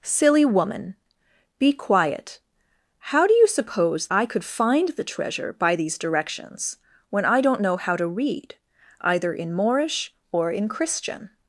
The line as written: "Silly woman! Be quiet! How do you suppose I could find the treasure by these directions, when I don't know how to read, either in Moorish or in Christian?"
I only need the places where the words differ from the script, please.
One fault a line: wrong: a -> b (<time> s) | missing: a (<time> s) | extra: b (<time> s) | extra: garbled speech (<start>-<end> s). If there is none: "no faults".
no faults